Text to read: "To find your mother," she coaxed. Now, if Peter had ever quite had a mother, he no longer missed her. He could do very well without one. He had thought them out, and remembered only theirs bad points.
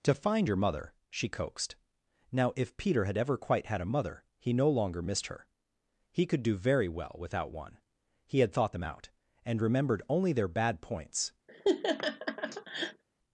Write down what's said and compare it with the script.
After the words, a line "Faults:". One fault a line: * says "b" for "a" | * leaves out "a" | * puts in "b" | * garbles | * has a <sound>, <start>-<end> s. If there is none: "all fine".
"To find your mother," she coaxed. Now, if Peter had ever quite had a mother, he no longer missed her. He could do very well without one. He had thought them out, and remembered only their bad points.
Faults:
* says "their" for "theirs"
* has a laugh, 11.5-13.0 s